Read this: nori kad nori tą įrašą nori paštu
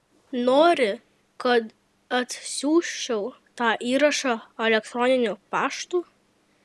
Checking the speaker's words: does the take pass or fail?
fail